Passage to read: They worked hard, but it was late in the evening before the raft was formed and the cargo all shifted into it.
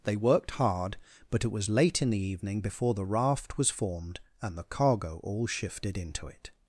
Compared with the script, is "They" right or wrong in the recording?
right